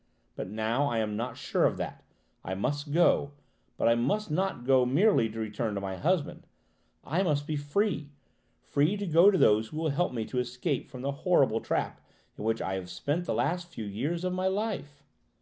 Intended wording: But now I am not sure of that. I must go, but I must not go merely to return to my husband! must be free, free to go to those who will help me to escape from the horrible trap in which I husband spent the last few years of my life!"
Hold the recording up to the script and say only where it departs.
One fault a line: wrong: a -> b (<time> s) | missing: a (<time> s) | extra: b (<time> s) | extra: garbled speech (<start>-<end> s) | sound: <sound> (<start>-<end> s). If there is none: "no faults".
extra: I (7.0 s)
wrong: husband -> have (12.7 s)